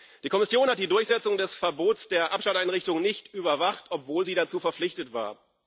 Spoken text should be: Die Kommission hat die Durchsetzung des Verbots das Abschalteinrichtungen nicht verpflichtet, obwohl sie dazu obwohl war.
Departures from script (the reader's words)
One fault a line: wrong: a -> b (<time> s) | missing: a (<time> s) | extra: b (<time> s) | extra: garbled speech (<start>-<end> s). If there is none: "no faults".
wrong: das -> der (2.1 s)
wrong: verpflichtet -> überwacht (3.3 s)
wrong: obwohl -> verpflichtet (4.6 s)